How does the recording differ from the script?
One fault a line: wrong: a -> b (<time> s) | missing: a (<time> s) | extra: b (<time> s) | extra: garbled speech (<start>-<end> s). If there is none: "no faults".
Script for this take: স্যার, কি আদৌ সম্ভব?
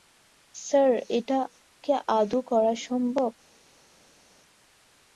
extra: এটা (1.2 s)
extra: করা (2.5 s)